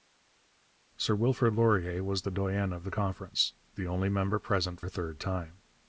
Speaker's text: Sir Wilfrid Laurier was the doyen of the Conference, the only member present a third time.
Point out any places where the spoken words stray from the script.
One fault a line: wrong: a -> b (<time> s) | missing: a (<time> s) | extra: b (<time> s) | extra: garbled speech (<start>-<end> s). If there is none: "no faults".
no faults